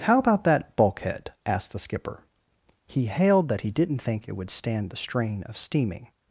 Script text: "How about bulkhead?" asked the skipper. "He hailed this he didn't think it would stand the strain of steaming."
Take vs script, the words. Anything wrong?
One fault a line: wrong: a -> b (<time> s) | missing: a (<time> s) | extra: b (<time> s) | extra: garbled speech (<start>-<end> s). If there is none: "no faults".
extra: that (0.4 s)
wrong: this -> that (3.5 s)